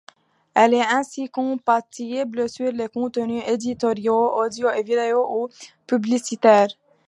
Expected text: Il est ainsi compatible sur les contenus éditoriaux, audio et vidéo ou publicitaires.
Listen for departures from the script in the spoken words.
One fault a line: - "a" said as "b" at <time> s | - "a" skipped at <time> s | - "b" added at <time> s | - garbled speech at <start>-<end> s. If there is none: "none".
- "Il" said as "Elle" at 0.6 s